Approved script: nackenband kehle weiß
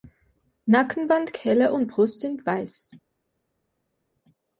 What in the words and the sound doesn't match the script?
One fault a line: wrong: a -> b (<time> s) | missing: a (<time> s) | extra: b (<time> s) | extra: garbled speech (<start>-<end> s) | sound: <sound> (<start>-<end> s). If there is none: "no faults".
extra: und brust sind (1.7 s)